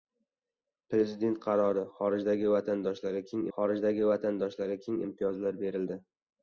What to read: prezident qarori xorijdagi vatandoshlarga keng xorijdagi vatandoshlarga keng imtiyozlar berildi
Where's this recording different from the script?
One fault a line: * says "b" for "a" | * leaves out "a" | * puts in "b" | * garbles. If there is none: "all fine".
all fine